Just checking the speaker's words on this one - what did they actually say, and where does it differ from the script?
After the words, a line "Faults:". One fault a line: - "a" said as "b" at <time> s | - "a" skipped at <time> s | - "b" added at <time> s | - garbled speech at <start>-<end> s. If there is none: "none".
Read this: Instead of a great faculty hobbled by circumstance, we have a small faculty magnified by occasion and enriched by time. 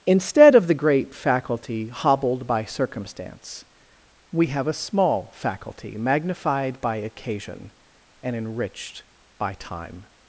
Instead of the great faculty hobbled by circumstance, we have a small faculty magnified by occasion and enriched by time.
Faults:
- "a" said as "the" at 0.7 s